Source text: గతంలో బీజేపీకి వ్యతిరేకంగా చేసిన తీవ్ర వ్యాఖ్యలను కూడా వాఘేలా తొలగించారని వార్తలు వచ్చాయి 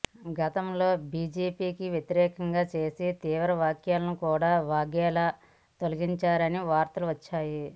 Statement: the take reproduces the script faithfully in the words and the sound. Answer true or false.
true